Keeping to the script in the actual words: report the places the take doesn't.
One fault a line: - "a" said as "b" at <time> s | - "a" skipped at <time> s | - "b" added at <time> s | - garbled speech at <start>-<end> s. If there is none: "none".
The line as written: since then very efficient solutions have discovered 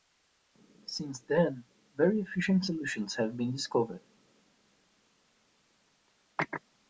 - "been" added at 3.4 s